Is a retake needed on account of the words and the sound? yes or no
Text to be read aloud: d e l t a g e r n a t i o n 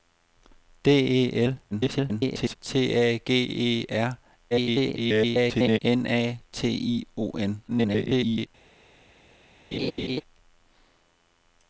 yes